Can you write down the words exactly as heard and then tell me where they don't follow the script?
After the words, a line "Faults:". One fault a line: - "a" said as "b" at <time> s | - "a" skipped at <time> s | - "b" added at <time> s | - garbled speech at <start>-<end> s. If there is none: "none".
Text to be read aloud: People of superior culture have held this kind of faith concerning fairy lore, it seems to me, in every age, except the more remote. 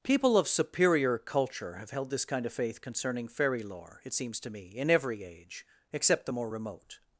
People of superior culture have held this kind of faith concerning fairy lore, it seems to me, in every age, except the more remote.
Faults:
none